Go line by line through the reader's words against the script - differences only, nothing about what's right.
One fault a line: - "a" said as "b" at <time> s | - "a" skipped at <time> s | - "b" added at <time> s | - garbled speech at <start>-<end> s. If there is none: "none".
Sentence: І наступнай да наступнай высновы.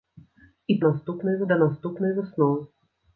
none